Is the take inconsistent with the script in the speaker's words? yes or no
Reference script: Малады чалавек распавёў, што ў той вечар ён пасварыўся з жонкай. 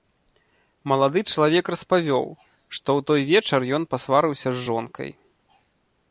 no